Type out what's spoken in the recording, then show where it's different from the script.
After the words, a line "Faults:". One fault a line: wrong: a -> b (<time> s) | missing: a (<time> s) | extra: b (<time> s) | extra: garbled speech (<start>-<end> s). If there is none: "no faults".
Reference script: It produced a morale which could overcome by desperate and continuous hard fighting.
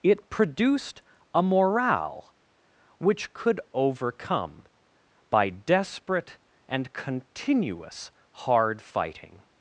It produced a morale which could overcome by desperate and continuous hard fighting.
Faults:
no faults